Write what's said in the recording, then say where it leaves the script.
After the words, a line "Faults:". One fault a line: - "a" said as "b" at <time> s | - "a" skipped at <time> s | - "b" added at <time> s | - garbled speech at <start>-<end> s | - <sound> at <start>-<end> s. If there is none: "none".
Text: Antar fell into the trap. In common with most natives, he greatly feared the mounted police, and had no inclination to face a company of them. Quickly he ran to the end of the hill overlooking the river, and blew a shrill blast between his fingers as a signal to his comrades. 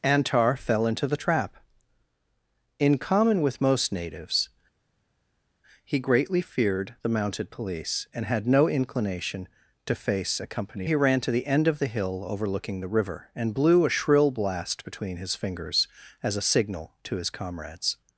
Antar fell into the trap. In common with most natives, he greatly feared the mounted police, and had no inclination to face a company he ran to the end of the hill overlooking the river, and blew a shrill blast between his fingers as a signal to his comrades.
Faults:
- "of them Quickly" skipped at 10.9 s